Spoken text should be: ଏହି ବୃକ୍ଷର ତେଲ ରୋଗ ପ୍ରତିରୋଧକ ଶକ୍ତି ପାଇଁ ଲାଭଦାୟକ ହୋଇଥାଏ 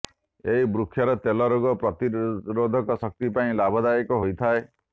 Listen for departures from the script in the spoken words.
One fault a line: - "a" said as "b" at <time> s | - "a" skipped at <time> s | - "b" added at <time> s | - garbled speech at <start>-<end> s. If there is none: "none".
none